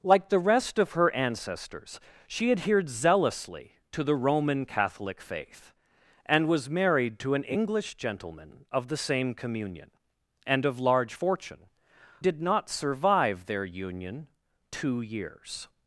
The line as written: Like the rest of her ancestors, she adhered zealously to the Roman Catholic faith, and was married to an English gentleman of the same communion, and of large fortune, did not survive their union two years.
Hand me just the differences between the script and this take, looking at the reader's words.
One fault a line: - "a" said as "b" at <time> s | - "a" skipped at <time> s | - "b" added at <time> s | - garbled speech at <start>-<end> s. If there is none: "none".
none